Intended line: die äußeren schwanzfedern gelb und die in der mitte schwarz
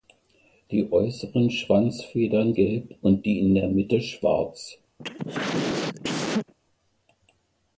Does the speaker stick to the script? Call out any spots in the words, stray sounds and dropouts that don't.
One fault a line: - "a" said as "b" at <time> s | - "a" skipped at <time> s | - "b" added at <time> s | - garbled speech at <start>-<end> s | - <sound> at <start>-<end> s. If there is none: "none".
- cough at 5.0-6.5 s